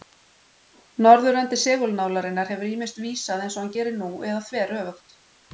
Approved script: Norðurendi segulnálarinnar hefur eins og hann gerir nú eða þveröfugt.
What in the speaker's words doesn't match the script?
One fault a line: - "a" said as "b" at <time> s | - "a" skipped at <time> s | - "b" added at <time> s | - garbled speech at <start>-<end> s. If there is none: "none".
- "ýmist vísað" added at 2.8 s